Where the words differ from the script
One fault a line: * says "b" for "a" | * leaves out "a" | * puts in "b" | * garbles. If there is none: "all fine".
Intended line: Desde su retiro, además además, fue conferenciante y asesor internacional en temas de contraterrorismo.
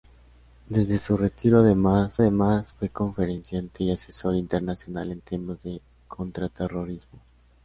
all fine